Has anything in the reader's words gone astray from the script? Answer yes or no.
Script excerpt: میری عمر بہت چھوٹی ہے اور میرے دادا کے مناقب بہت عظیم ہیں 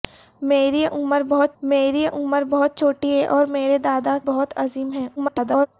yes